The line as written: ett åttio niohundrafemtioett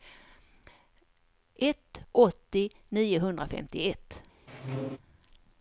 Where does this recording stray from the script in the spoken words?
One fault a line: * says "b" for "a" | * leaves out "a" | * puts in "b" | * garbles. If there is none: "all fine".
all fine